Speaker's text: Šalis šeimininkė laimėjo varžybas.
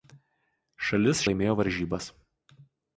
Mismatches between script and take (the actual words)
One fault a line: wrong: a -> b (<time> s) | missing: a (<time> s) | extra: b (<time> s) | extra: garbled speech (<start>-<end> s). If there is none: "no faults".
missing: šeimininkė (1.2 s)